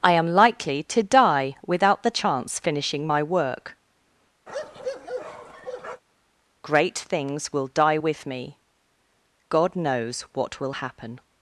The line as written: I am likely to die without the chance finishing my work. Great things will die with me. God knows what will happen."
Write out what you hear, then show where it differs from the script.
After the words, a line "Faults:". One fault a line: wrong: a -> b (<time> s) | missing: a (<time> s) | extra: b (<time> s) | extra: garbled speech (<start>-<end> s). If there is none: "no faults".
I am likely to die without the chance finishing my work. Great things will die with me. God knows what will happen."
Faults:
no faults